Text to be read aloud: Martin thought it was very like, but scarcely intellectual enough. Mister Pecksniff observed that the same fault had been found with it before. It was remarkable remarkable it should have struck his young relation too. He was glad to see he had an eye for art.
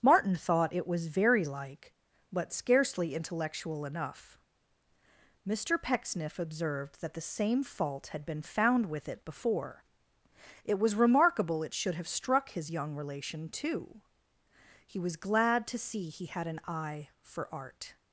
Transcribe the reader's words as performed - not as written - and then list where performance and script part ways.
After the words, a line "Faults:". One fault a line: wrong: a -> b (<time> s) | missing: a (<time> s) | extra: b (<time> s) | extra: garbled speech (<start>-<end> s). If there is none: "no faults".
Martin thought it was very like, but scarcely intellectual enough. Mister Pecksniff observed that the same fault had been found with it before. It was remarkable it should have struck his young relation too. He was glad to see he had an eye for art.
Faults:
missing: remarkable (11.6 s)